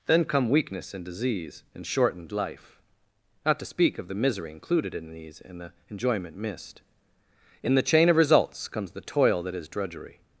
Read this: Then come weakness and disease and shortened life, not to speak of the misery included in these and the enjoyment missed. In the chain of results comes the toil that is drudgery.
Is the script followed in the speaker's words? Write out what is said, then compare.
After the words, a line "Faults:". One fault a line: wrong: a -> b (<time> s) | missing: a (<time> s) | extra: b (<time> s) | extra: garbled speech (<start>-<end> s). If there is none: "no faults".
Then come weakness and disease and shortened life, not to speak of the misery included in these and the enjoyment missed. In the chain of results comes the toil that is drudgery.
Faults:
no faults